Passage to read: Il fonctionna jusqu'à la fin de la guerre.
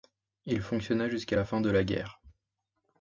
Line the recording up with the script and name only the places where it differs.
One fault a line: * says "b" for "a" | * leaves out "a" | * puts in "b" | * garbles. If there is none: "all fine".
all fine